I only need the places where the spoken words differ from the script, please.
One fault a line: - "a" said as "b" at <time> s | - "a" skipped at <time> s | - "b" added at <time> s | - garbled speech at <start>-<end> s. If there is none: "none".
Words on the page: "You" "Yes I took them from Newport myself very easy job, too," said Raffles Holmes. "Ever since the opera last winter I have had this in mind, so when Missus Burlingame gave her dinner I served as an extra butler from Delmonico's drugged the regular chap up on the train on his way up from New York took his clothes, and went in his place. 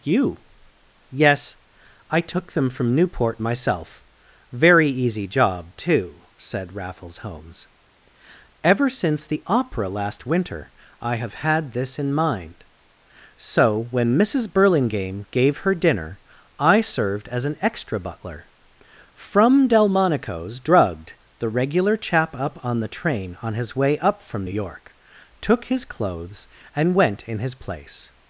none